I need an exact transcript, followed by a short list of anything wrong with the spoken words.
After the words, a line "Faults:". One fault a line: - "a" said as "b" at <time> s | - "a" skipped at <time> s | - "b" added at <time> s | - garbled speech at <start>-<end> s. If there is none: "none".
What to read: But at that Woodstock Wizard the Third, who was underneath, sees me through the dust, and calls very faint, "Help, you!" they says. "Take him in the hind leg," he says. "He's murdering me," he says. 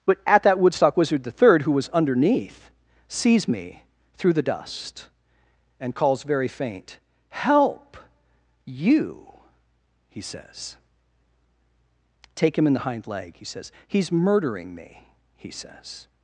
But at that Woodstock Wizard the Third, who was underneath, sees me through the dust, and calls very faint, "Help, you!" he says. "Take him in the hind leg," he says. "He's murdering me," he says.
Faults:
- "they" said as "he" at 10.1 s